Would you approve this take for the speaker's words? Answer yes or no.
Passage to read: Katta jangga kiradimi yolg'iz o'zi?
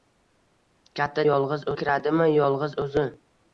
no